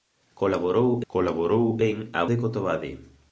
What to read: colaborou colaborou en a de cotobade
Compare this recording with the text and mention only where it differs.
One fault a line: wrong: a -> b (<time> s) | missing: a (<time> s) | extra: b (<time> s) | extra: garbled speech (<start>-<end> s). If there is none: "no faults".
no faults